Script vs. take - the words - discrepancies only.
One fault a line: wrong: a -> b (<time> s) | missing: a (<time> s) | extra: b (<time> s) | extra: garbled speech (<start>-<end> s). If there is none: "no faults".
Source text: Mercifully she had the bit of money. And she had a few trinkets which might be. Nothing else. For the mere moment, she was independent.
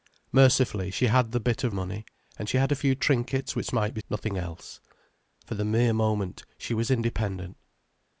no faults